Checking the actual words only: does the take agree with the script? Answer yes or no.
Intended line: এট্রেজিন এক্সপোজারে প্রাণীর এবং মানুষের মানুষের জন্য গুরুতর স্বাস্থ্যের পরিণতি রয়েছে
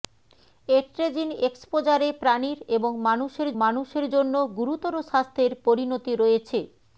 yes